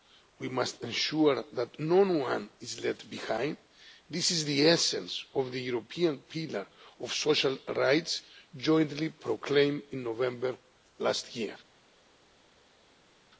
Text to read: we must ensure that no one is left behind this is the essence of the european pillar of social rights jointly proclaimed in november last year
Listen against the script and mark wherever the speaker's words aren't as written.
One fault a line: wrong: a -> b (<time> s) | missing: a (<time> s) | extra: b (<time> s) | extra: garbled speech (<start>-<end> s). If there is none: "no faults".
no faults